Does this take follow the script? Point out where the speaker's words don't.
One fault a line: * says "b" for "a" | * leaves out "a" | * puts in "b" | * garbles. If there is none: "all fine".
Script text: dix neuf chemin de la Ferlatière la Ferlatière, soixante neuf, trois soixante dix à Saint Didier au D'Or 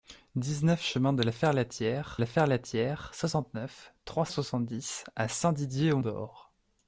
all fine